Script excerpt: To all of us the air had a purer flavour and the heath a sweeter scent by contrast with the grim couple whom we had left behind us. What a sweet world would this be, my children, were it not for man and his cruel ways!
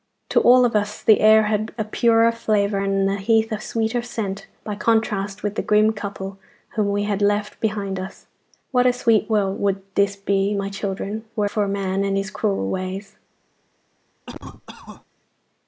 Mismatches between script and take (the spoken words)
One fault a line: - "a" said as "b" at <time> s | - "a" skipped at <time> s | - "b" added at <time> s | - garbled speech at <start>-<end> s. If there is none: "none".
- "it not" skipped at 11.5 s